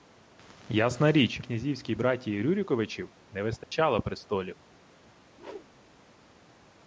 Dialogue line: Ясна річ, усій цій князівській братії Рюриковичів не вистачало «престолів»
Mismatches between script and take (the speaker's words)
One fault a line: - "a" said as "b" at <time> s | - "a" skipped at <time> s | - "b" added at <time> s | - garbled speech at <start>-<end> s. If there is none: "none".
- "усій цій" skipped at 1.4 s